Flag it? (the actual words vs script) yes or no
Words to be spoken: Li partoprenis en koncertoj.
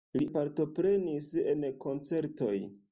no